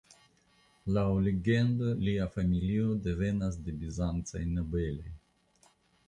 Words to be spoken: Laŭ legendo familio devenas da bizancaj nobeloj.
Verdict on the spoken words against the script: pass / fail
fail